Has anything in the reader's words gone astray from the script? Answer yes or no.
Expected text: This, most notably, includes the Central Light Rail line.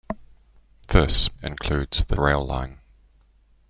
yes